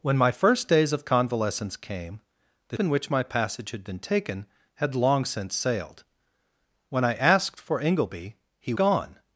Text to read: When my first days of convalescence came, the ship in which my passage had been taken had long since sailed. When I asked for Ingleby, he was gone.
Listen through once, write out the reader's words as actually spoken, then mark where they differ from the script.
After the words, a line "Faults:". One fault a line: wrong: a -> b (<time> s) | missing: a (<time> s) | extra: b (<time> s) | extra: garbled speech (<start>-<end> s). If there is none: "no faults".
When my first days of convalescence came, the in which my passage had been taken had long since sailed. When I asked for Ingleby, he gone.
Faults:
missing: ship (2.8 s)
missing: was (8.7 s)